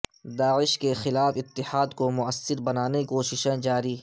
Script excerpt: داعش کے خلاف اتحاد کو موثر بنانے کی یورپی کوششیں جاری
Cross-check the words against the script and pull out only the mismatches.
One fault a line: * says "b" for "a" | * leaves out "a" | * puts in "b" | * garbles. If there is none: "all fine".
* leaves out "کی یورپی"